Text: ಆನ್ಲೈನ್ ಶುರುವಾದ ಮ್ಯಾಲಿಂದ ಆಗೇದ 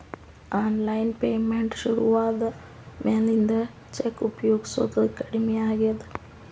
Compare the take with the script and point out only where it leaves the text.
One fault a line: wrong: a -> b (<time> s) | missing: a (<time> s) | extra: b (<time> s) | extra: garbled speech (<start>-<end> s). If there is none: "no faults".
extra: ಪೇಮೆಂಟ್ (1.2 s)
extra: ಚೆಕ್ ಉಪಯೊಗಸೋದ ಕಡಮಿ (3.9 s)